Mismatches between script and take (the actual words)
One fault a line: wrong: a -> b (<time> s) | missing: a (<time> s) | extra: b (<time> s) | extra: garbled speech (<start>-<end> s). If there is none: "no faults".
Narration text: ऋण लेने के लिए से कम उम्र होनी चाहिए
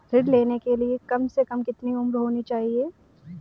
extra: कम (1.1 s)
extra: कितनी (1.6 s)